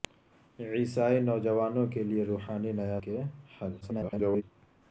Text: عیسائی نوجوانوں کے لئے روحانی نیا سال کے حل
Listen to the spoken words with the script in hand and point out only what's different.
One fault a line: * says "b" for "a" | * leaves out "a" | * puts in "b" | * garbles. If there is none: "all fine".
* leaves out "سال"
* garbles